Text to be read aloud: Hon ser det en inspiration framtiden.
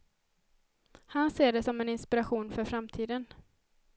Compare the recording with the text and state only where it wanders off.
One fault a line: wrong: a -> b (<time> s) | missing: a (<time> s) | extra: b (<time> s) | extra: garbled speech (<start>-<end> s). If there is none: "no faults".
wrong: Hon -> Han (1.1 s)
extra: som (1.6 s)
extra: för (2.5 s)